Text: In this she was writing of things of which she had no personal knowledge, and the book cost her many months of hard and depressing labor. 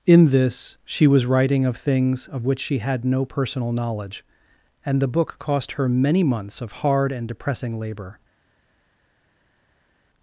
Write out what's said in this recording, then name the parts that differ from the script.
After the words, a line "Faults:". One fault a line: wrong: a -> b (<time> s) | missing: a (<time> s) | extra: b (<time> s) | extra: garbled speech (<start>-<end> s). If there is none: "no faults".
In this she was writing of things of which she had no personal knowledge, and the book cost her many months of hard and depressing labor.
Faults:
no faults